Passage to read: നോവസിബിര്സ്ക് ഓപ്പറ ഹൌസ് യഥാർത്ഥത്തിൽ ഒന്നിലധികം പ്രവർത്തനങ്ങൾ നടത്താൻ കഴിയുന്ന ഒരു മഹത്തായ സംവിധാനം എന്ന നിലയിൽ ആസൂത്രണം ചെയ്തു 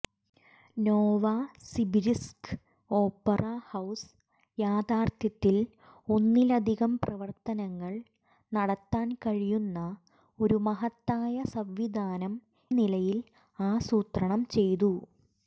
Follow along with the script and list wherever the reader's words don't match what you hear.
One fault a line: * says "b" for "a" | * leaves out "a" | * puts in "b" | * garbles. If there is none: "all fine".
* leaves out "എന്ന"